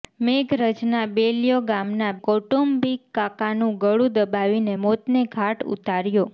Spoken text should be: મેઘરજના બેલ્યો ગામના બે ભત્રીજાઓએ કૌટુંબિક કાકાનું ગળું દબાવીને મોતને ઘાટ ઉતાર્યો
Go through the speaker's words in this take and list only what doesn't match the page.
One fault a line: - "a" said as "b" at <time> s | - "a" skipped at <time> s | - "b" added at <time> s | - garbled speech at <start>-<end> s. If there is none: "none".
- "બે ભત્રીજાઓએ" skipped at 2.1 s